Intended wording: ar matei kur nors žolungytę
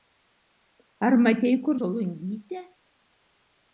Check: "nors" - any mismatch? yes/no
yes